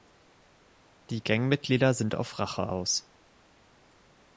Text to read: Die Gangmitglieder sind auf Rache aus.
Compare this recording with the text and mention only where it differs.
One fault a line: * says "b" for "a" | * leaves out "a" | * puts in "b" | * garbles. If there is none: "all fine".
all fine